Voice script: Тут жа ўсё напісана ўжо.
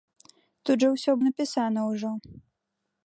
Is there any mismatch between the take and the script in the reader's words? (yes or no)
no